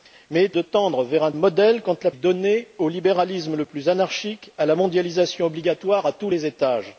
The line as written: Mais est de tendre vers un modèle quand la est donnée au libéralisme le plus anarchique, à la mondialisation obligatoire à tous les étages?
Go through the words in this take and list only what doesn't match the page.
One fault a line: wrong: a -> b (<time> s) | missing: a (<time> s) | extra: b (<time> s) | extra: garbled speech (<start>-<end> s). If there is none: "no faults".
no faults